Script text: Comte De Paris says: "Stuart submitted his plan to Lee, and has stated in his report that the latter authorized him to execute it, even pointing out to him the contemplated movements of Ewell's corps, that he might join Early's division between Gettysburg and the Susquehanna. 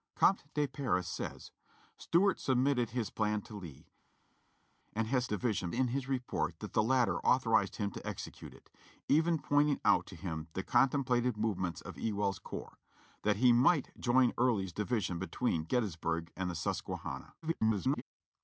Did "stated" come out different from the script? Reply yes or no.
yes